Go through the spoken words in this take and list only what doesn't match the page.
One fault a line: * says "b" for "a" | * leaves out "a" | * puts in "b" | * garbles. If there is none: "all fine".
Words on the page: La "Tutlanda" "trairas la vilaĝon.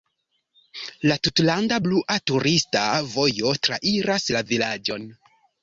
* puts in "blua turista vojo"